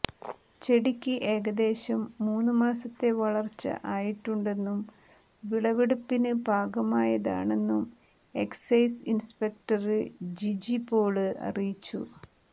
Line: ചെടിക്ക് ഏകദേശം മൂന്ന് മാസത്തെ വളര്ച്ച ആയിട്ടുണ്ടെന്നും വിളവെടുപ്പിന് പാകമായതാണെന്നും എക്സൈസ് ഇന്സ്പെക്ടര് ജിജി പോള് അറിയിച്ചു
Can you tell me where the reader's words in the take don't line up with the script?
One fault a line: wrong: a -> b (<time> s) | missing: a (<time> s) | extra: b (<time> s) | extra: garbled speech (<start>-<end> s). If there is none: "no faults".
no faults